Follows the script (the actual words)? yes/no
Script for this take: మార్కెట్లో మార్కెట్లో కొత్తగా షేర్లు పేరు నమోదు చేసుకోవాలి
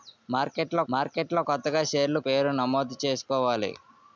yes